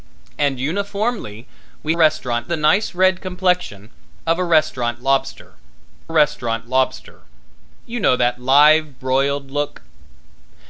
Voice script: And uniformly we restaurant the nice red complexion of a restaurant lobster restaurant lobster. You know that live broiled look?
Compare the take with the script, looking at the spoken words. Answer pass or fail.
pass